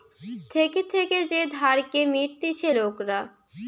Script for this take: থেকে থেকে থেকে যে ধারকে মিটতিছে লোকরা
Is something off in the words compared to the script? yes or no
yes